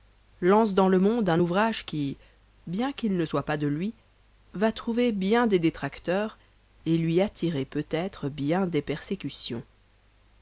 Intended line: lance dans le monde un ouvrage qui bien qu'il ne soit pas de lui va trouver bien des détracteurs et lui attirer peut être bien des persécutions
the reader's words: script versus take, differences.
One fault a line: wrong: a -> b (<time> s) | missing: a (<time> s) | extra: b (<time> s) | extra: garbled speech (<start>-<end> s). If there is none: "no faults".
no faults